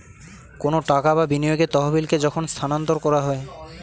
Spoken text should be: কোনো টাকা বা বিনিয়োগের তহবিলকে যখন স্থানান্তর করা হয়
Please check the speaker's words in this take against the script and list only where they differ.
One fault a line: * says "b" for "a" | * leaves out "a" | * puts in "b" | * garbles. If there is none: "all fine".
all fine